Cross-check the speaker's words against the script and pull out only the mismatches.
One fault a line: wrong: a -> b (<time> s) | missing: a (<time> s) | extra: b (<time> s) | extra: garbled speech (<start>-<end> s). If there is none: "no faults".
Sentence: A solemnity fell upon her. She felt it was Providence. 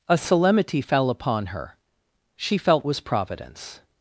missing: it (2.9 s)